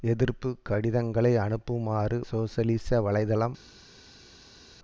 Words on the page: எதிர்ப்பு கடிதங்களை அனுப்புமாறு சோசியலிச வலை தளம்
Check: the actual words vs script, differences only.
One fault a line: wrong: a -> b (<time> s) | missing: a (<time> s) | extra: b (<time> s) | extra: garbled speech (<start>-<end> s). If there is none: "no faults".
no faults